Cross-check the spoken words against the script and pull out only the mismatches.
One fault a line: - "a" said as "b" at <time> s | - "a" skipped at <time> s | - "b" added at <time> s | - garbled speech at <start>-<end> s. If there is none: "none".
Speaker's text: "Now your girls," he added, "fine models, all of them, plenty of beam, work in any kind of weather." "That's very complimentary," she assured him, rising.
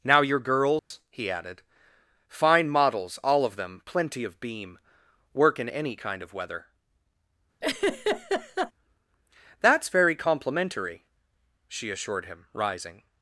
none